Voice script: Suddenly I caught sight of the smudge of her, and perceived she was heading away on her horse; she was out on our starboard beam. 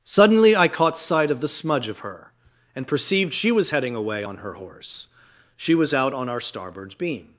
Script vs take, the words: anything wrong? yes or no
no